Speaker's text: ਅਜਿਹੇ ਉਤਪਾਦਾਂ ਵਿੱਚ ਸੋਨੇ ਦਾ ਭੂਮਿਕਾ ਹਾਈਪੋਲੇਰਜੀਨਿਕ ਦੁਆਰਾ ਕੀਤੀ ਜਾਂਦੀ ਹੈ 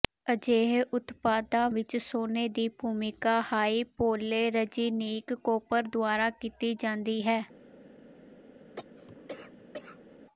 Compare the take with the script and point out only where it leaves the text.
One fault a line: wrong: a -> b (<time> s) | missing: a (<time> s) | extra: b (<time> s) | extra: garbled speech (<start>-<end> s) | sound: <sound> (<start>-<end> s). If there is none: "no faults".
wrong: ਦਾ -> ਦੀ (2.5 s)
extra: ਕੌਪਰ (5.3 s)
sound: cough (8.8-10.2 s)